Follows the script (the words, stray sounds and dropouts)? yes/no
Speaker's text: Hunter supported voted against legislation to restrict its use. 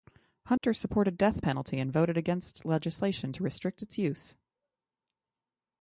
no